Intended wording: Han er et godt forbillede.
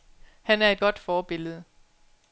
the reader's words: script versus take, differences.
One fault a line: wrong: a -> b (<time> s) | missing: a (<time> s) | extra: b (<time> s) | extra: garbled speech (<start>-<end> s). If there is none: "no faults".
no faults